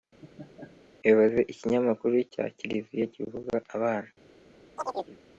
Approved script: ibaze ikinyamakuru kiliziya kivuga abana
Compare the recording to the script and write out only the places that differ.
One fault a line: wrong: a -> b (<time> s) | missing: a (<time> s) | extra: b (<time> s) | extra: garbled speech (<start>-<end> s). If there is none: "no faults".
extra: cya (2.3 s)